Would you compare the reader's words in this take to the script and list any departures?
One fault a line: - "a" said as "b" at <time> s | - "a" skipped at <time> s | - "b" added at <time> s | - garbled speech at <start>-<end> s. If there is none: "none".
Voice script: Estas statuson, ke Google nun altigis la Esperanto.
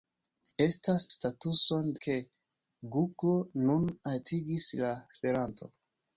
none